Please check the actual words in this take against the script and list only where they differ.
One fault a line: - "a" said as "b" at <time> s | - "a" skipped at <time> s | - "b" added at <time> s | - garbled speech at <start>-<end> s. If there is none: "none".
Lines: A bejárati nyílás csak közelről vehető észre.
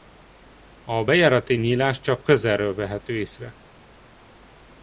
none